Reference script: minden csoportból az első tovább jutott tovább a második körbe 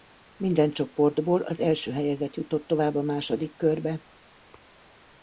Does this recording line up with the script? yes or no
no